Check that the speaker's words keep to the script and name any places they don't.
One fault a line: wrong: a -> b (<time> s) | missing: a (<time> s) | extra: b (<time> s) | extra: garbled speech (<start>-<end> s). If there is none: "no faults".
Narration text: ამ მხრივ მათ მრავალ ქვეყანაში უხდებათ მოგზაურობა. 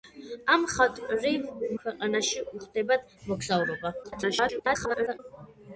missing: მათ მრავალ (1.4 s)
extra: garbled speech (4.0-5.2 s)